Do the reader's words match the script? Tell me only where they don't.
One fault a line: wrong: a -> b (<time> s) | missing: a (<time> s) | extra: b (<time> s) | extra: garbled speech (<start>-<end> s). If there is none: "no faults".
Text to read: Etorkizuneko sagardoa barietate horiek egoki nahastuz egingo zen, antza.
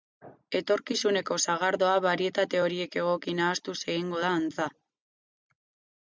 wrong: zen -> da (4.3 s)